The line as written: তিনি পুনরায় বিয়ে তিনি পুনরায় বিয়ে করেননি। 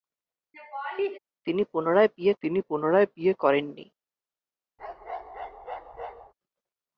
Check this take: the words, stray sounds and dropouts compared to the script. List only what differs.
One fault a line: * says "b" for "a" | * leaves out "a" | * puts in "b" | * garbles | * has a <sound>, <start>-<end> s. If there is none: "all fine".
* has a laugh, 0.5-1.2 s
* has a bark, 4.8-6.3 s